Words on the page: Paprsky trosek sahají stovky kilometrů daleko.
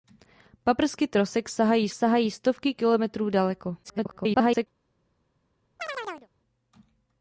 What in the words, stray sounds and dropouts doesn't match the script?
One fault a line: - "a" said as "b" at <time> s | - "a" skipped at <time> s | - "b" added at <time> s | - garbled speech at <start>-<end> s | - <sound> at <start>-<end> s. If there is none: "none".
- "sahají" added at 1.9 s
- garbled speech at 3.8-4.7 s
- chirp at 5.8-6.3 s